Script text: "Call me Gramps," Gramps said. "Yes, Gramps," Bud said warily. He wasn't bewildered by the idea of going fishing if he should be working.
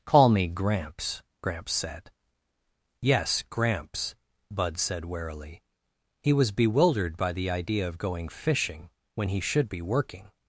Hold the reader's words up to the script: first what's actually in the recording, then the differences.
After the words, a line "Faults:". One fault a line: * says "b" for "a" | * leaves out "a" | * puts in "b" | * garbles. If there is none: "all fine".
"Call me Gramps," Gramps said. "Yes, Gramps," Bud said warily. He was bewildered by the idea of going fishing when he should be working.
Faults:
* says "was" for "wasn't"
* says "when" for "if"